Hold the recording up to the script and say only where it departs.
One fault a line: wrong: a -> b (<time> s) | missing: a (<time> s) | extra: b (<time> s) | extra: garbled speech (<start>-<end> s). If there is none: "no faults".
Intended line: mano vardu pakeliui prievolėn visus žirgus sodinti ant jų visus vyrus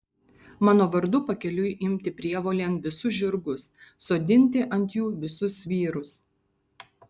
extra: imti (1.9 s)